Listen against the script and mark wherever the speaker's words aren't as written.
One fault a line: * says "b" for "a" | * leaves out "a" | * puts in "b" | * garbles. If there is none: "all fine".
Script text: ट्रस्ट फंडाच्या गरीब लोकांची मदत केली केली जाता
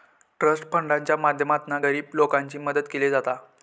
* puts in "माध्यमातना"
* leaves out "केली"